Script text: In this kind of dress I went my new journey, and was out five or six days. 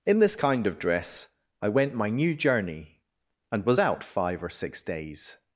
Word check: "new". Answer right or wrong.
right